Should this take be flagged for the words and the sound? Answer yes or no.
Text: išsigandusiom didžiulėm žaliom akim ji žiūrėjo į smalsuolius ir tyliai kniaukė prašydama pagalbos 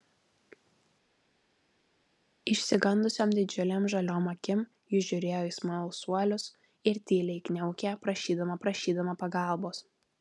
yes